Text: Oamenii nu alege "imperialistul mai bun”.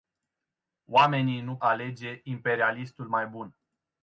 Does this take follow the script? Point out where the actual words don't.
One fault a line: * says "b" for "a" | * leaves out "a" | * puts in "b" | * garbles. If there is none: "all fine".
all fine